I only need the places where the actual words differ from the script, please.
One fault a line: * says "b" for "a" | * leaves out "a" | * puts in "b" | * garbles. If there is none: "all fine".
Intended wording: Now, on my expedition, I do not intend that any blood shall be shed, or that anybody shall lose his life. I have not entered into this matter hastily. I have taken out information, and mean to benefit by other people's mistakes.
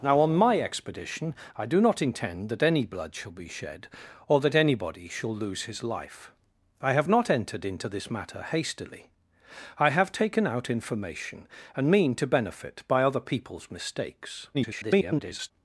* garbles